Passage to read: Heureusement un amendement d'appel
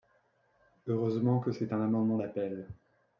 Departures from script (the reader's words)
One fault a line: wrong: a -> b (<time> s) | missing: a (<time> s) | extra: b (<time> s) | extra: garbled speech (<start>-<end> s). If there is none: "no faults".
extra: que c'est (1.4 s)